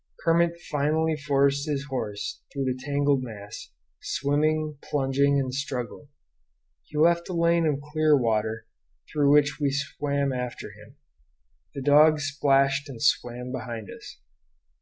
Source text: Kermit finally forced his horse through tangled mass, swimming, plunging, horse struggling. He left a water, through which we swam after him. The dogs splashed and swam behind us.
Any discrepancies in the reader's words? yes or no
yes